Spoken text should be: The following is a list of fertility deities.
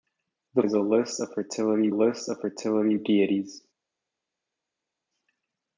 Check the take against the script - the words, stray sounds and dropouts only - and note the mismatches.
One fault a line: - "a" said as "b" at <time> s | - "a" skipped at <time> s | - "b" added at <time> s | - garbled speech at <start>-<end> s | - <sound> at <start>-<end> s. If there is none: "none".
- "following" skipped at 0.6 s
- "list of fertility" added at 1.9 s